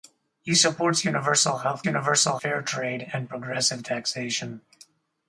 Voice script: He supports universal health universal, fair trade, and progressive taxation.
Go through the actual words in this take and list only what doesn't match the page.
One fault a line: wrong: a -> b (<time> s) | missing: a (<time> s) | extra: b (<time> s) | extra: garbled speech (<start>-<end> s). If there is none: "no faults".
no faults